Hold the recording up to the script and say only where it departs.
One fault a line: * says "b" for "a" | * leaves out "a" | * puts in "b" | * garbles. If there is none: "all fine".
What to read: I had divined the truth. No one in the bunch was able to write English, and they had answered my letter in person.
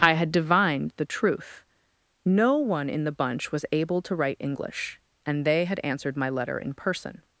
all fine